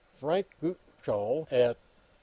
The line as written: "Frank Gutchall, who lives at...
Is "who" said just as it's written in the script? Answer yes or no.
no